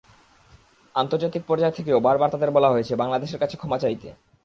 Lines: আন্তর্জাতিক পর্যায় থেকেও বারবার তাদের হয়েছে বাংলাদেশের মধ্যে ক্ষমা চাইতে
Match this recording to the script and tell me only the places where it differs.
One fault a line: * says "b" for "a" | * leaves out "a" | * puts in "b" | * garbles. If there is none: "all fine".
* puts in "বলা"
* says "কাছে" for "মধ্যে"